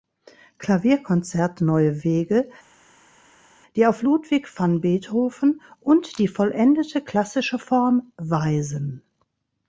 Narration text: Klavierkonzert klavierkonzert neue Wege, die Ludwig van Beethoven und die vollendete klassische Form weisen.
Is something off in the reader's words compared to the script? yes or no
yes